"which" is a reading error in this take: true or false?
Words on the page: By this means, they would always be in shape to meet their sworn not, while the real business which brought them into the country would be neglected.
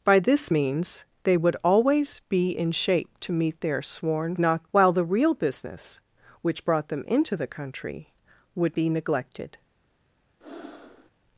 false